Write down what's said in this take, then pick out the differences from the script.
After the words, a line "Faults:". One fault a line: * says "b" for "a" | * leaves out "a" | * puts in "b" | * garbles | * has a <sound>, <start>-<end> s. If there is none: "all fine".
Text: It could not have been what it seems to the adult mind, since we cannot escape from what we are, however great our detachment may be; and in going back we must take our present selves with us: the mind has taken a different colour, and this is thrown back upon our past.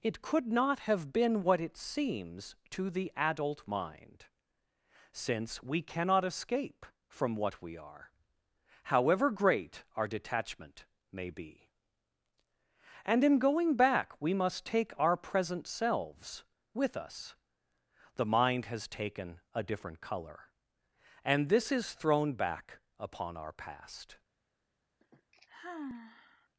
It could not have been what it seems to the adult mind, since we cannot escape from what we are, however great our detachment may be; and in going back we must take our present selves with us: the mind has taken a different colour, and this is thrown back upon our past.
Faults:
* has a sigh, 25.0-26.5 s